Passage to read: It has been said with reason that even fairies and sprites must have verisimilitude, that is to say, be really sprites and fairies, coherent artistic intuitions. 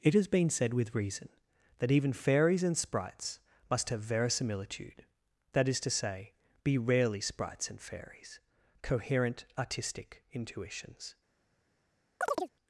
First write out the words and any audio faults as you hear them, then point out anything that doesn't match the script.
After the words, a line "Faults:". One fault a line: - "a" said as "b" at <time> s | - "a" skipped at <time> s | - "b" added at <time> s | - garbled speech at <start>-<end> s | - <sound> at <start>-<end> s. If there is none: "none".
It has been said with reason that even fairies and sprites must have verisimilitude, that is to say, be rarely sprites and fairies, coherent artistic intuitions.
Faults:
- "really" said as "rarely" at 6.8 s
- chirp at 12.2-12.5 s